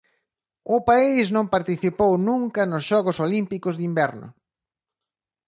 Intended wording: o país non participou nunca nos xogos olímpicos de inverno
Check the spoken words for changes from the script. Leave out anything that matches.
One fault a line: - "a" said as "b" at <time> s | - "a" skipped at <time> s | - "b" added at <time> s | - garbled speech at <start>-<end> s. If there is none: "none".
none